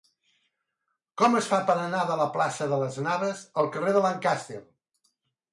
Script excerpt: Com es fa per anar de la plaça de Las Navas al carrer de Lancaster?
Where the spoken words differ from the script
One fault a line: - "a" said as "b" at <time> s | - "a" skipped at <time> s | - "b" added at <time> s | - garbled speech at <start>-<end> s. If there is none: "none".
none